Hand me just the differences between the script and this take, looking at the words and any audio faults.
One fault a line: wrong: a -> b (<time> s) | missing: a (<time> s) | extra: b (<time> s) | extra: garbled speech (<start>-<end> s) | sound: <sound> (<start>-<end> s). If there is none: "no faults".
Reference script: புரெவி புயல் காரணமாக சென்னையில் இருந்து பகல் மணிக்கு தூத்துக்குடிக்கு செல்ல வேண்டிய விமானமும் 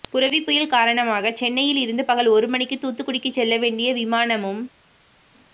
extra: ஒரு (2.3 s)